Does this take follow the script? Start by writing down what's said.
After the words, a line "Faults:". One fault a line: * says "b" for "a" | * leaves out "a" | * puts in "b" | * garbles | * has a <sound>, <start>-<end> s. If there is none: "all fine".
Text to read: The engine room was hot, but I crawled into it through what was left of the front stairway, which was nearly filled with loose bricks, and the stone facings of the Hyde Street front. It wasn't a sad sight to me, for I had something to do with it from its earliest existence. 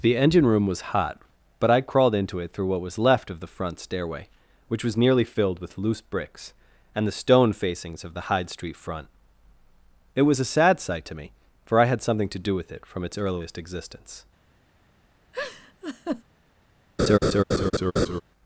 The engine room was hot, but I crawled into it through what was left of the front stairway, which was nearly filled with loose bricks, and the stone facings of the Hyde Street front. It was a sad sight to me, for I had something to do with it from its earliest existence.
Faults:
* says "was" for "wasn't"
* has a laugh, 15.3-16.2 s
* has a laugh, 17.0-18.2 s